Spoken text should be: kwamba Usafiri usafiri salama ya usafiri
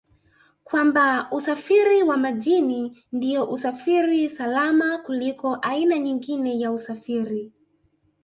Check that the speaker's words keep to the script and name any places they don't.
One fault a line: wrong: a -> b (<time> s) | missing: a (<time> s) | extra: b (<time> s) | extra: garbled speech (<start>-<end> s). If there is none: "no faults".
extra: wa Majini ndio (2.0 s)
extra: kuliko aina nyingine (5.0 s)